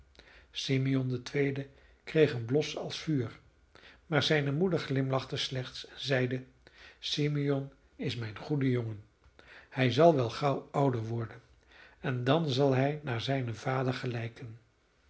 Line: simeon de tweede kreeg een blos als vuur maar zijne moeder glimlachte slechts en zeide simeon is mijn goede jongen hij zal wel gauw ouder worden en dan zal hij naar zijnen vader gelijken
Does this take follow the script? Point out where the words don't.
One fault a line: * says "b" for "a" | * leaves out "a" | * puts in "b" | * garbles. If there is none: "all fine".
all fine